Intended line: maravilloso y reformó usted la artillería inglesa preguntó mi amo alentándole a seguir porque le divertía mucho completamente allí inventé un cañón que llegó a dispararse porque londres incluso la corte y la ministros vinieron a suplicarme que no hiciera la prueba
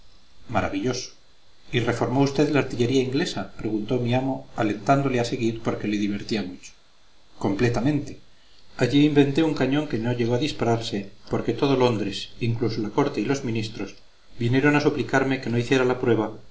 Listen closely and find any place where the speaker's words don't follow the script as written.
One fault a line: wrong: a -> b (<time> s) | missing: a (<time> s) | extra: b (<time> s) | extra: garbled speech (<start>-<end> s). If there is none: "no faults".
extra: no (10.0 s)
extra: todo (11.5 s)
wrong: la -> los (13.3 s)